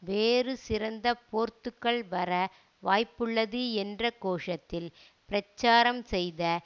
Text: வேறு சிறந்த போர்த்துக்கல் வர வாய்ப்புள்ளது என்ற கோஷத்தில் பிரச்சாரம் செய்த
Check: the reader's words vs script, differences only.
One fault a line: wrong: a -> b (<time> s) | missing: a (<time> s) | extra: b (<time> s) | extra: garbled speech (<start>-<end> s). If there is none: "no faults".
no faults